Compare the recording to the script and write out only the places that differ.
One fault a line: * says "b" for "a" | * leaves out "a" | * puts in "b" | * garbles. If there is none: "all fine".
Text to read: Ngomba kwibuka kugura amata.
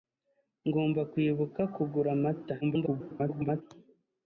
* garbles